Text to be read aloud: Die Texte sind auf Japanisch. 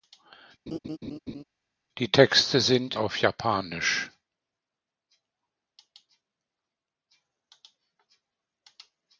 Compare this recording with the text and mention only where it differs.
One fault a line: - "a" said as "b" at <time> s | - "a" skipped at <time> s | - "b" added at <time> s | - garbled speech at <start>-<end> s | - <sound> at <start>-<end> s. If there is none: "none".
- laugh at 0.7-1.4 s